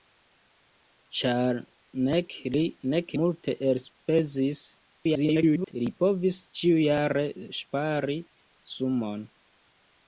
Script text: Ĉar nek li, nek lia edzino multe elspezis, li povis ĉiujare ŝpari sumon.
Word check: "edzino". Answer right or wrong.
wrong